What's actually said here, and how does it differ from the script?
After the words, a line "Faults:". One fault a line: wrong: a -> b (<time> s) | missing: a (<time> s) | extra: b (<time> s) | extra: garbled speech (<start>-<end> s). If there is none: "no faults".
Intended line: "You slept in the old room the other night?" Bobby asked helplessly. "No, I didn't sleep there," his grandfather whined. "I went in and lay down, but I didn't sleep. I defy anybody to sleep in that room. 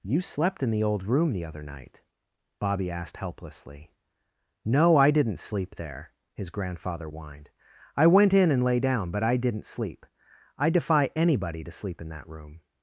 "You slept in the old room the other night?" Bobby asked helplessly. "No, I didn't sleep there," his grandfather whined. "I went in and lay down, but I didn't sleep. I defy anybody to sleep in that room.
Faults:
no faults